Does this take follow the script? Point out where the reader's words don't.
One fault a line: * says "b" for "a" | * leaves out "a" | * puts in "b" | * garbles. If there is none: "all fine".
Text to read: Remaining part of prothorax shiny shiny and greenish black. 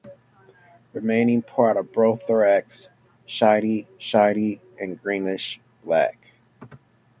all fine